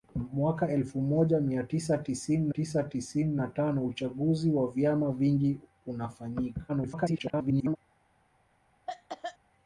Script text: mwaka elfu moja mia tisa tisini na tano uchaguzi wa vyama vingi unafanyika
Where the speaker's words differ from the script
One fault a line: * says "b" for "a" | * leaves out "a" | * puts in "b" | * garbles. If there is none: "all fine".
* puts in "tisa tisini"
* garbles